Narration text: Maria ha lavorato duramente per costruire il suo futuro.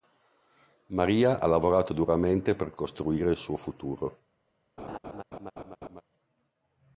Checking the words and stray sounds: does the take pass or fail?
fail